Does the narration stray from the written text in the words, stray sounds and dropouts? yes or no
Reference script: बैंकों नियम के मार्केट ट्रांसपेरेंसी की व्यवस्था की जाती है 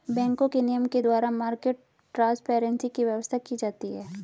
yes